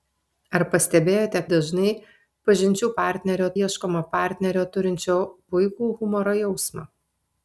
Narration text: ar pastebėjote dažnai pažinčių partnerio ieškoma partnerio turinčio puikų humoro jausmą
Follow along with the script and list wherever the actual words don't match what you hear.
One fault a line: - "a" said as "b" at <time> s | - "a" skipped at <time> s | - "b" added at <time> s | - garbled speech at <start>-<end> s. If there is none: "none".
none